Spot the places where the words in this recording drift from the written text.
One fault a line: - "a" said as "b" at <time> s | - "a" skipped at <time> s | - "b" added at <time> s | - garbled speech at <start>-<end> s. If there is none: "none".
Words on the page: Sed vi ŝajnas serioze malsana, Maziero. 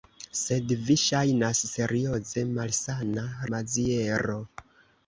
none